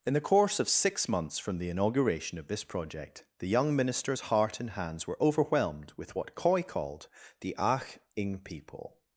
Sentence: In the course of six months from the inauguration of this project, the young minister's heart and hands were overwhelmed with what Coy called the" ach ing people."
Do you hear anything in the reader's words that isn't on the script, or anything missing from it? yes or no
no